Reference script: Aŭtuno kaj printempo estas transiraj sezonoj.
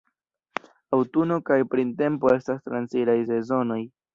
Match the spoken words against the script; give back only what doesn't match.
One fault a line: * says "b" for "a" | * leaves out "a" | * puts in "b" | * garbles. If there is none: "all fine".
all fine